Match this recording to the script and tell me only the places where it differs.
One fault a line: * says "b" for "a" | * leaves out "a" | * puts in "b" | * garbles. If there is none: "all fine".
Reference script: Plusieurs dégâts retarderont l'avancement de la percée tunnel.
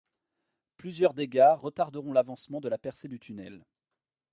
* puts in "du"